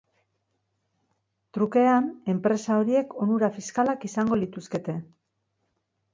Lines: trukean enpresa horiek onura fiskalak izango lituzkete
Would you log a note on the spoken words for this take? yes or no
no